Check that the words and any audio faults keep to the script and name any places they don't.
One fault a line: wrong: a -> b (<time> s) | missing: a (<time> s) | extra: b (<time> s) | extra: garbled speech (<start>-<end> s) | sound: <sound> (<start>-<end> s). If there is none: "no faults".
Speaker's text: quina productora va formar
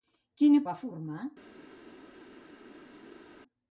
missing: productora (0.6 s)